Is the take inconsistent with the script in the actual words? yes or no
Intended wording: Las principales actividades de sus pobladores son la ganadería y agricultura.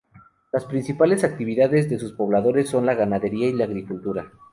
yes